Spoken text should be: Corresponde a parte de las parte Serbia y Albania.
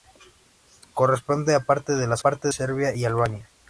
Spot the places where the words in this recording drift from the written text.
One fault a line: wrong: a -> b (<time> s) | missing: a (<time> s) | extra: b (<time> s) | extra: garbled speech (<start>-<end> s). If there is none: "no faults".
no faults